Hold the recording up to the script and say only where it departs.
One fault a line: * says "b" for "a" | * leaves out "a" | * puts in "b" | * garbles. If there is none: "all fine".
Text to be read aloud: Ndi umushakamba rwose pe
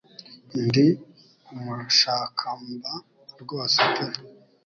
all fine